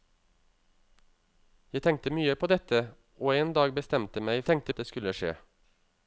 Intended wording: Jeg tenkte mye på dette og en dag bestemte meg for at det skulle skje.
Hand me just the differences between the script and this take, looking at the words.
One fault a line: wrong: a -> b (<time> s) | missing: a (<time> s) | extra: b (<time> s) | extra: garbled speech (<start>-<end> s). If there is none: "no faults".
wrong: for -> tenkte (4.5 s)